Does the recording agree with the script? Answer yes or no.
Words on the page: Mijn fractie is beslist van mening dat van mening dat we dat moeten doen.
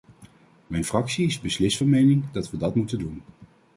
no